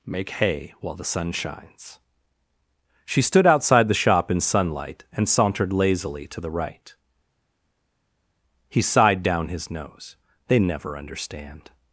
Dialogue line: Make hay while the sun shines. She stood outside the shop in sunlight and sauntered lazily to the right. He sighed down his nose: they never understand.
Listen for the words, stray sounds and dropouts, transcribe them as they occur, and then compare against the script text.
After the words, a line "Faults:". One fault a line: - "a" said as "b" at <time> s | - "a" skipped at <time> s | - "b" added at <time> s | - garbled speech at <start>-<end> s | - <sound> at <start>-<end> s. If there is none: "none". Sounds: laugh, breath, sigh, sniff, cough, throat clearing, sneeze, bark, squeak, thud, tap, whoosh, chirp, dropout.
Make hay while the sun shines. She stood outside the shop in sunlight and sauntered lazily to the right. He sighed down his nose: they never understand.
Faults:
none